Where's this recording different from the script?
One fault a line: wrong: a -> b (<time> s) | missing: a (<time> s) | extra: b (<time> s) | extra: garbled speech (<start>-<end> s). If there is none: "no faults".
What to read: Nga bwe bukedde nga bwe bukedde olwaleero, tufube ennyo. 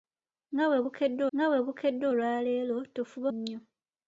no faults